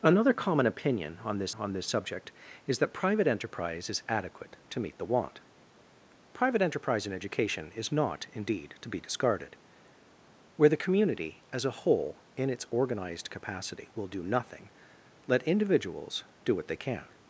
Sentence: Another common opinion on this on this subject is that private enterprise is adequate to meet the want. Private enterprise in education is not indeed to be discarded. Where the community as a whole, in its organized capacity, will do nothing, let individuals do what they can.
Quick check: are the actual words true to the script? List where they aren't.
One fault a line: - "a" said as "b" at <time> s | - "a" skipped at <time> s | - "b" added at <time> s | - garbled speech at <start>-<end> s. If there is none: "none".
none